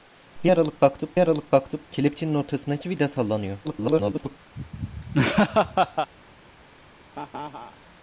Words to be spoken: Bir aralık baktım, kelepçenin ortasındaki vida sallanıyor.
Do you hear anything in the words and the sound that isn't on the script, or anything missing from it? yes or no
yes